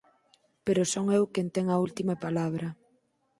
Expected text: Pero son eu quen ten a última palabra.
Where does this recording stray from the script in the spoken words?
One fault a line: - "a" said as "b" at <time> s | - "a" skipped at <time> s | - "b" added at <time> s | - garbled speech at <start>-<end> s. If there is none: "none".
none